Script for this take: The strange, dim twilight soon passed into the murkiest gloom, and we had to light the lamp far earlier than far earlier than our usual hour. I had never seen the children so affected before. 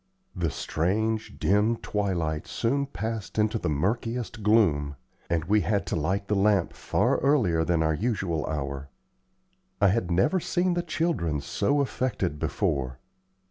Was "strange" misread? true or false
false